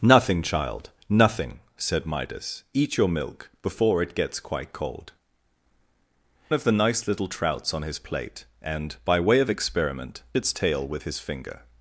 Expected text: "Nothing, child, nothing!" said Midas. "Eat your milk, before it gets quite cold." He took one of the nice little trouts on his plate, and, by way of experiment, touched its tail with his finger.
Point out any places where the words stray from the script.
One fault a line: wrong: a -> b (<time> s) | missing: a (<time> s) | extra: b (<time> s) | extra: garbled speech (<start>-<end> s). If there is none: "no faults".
missing: He took one (5.1 s)
missing: touched (10.2 s)